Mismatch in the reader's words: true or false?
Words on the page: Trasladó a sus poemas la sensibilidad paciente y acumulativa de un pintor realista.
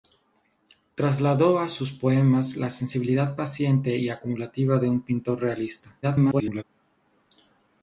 true